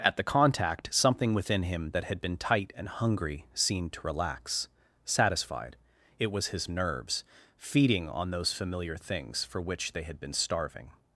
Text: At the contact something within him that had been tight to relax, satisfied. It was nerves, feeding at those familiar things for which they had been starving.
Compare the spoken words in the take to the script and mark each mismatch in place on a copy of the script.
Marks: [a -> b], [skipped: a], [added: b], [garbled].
At the contact something within him that had been tight [added: and hungry seemed] to relax, satisfied. It was [added: his] nerves, feeding [at -> on] those familiar things for which they had been starving.